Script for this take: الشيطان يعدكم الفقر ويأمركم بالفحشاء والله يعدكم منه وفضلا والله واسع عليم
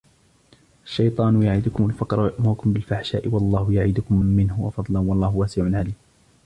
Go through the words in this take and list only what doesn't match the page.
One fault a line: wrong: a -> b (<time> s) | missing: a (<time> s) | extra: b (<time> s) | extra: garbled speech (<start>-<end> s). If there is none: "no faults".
no faults